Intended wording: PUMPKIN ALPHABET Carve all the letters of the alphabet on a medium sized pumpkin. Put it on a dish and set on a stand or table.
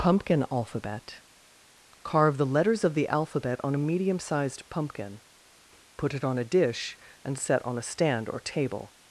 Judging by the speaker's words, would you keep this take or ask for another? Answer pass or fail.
fail